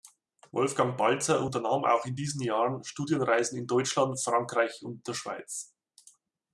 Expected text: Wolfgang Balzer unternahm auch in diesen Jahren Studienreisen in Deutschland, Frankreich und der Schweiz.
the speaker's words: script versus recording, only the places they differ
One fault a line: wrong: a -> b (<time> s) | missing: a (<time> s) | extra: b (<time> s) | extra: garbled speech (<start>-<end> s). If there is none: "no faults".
no faults